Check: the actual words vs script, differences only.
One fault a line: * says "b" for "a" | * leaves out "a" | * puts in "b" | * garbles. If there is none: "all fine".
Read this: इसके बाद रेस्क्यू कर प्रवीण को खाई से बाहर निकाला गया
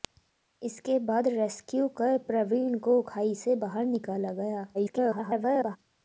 * garbles